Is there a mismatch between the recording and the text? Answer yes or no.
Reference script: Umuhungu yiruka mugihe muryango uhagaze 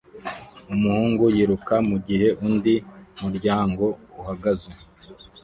yes